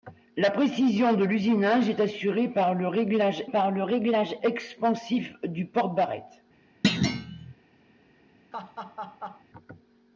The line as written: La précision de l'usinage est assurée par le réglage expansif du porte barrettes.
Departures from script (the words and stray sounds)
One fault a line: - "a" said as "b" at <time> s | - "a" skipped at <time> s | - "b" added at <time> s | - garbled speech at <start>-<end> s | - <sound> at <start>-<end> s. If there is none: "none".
- "par le réglage" added at 3.5 s
- thud at 6.8-7.5 s
- laugh at 8.5-9.4 s